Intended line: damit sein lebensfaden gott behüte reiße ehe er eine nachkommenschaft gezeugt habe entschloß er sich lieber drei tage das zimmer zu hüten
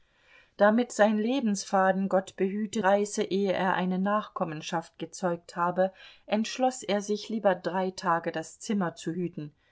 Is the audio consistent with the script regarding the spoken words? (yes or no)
yes